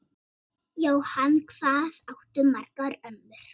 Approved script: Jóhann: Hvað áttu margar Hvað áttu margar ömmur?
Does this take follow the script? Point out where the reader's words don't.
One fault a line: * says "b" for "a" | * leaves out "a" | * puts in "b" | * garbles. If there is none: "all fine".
* leaves out "Hvað áttu margar"